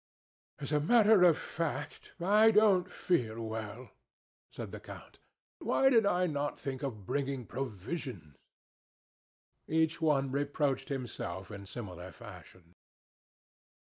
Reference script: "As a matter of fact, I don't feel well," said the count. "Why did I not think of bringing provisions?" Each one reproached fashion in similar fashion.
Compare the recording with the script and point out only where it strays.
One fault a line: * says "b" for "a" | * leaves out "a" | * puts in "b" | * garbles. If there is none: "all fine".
* says "himself" for "fashion"